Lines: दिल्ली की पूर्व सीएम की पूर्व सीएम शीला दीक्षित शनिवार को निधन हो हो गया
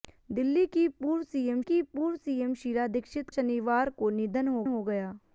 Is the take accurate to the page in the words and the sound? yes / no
yes